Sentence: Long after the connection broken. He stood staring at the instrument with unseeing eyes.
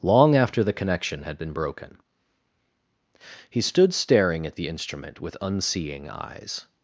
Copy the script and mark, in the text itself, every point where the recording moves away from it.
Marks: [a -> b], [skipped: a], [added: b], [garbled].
Long after the connection [added: had been] broken. He stood staring at the instrument with unseeing eyes.